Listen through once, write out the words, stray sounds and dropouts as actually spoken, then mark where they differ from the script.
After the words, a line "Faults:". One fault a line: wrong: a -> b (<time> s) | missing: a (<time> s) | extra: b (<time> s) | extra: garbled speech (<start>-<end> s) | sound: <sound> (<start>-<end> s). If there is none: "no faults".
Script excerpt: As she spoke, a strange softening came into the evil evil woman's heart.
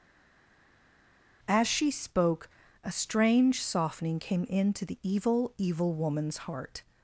As she spoke, a strange softening came into the evil evil woman's heart.
Faults:
no faults